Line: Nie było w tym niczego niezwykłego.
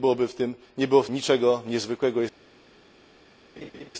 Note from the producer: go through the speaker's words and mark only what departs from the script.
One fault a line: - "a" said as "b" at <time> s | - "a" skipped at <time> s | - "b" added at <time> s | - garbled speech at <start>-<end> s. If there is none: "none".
- "tym" skipped at 1.1 s